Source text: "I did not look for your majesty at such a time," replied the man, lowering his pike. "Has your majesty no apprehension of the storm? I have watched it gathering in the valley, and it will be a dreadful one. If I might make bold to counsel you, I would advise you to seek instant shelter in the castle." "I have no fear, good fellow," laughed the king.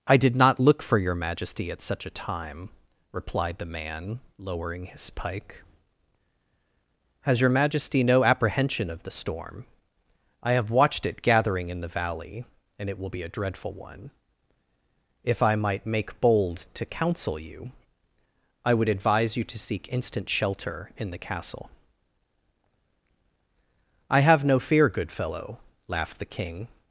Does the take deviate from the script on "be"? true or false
false